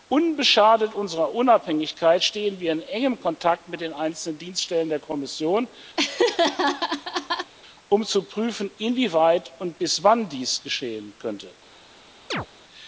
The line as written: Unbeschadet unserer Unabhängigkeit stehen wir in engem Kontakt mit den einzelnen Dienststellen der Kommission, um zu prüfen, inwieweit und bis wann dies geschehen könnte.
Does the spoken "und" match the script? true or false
true